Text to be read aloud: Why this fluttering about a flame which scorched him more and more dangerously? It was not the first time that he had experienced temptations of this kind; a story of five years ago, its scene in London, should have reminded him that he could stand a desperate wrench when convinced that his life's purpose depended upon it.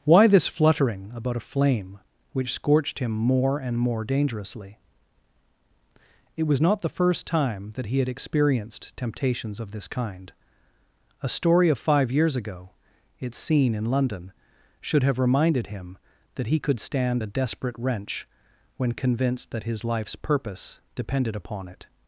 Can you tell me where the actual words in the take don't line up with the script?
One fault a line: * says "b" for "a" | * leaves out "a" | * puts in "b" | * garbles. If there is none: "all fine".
all fine